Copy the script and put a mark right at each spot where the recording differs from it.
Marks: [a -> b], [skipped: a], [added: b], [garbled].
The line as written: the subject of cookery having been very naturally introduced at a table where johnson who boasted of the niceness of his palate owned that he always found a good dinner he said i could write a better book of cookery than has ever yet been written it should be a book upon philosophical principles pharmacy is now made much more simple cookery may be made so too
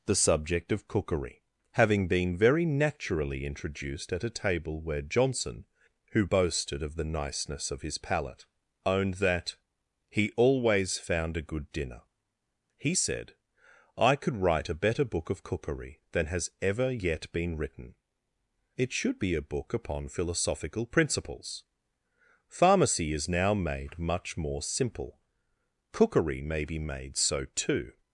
the subject of cookery having been very naturally introduced at a table where johnson who boasted of the niceness of his palate owned that he always found a good dinner he said i could write a better book of cookery than has ever yet been written it should be a book upon philosophical principles pharmacy is now made much more simple cookery may be made so too